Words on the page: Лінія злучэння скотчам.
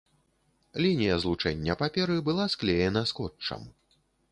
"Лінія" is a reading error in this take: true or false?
false